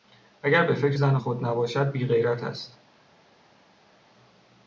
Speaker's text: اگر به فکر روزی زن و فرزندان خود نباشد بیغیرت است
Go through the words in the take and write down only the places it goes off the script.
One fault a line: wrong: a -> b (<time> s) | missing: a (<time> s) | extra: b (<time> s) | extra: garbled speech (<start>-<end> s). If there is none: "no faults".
missing: روزی (1.0 s)
missing: فرزندان (1.2 s)